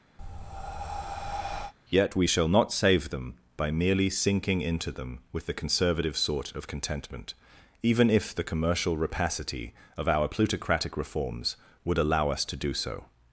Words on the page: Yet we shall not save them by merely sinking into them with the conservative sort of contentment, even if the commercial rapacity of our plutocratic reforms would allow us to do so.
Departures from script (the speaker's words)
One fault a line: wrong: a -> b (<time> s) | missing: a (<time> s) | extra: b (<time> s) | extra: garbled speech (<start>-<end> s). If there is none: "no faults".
no faults